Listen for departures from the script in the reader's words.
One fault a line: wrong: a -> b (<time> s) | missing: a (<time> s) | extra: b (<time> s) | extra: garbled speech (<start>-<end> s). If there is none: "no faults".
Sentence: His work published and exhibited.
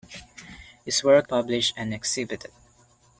no faults